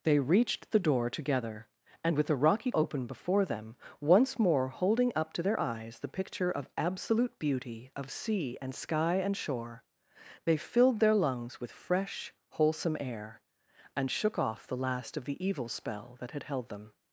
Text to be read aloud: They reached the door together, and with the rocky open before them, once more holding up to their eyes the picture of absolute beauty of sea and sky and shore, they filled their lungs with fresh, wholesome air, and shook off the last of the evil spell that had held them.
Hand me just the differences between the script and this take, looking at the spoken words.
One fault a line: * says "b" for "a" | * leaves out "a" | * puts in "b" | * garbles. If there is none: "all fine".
all fine